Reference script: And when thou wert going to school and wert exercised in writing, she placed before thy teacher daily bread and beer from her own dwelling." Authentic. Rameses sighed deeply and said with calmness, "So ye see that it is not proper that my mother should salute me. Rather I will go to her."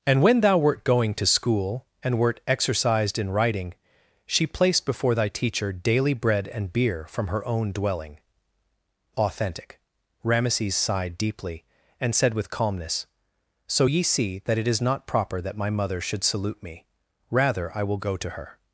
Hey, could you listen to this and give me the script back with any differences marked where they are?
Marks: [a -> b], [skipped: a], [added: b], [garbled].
And when thou wert going to school and wert exercised in writing, she placed before thy teacher daily bread and beer from her own dwelling." Authentic. Rameses sighed deeply and said with calmness, "So ye see that it is not proper that my mother should salute me. Rather I will go to her."